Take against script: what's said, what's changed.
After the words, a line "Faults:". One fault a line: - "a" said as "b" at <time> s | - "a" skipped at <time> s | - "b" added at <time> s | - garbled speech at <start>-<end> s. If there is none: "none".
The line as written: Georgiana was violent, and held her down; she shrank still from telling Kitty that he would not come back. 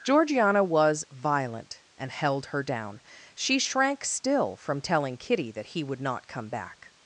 Georgiana was violent, and held her down; she shrank still from telling Kitty that he would not come back.
Faults:
none